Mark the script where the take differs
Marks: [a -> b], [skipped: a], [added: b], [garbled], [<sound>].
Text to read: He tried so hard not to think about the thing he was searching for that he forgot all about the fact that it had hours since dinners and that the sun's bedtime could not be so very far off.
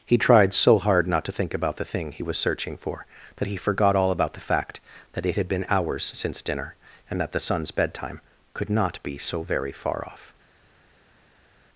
He tried so hard not to think about the thing he was searching for that he forgot all about the fact that it had [added: been] hours since [dinners -> dinner] and that the sun's bedtime could not be so very far off.